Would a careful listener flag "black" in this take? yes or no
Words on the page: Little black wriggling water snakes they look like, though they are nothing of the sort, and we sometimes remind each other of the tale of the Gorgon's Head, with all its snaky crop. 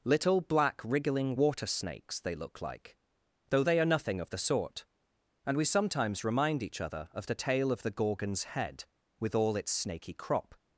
no